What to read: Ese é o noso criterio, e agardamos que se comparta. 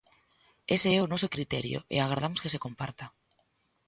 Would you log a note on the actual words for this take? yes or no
no